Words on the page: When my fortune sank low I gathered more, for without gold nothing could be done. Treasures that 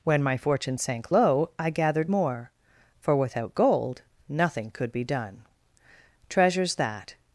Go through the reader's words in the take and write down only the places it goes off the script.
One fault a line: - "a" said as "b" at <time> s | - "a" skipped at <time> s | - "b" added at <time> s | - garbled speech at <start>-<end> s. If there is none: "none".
none